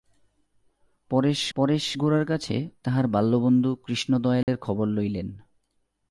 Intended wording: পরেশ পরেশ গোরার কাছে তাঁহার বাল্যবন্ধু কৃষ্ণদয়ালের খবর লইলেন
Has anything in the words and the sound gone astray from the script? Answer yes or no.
yes